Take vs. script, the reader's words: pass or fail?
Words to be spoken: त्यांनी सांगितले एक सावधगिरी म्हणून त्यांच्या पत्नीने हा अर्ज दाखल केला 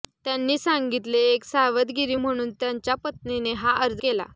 fail